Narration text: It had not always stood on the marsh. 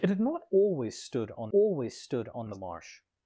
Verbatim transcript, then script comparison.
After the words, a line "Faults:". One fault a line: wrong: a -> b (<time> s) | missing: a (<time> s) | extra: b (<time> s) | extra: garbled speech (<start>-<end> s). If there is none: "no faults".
It had not always stood on always stood on the marsh.
Faults:
extra: always stood on (1.5 s)